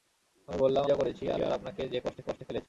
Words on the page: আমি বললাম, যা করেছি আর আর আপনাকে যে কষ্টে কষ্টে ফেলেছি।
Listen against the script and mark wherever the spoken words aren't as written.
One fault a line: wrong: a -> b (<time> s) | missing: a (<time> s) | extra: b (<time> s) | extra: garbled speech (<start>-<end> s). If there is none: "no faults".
no faults